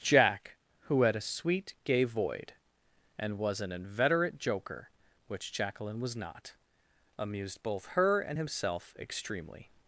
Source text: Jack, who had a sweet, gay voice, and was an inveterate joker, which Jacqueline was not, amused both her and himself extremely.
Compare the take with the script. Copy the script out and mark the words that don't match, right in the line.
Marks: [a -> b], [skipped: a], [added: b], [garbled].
Jack, who had a sweet, gay [voice, -> void] and was an inveterate joker, which Jacqueline was not, amused both her and himself extremely.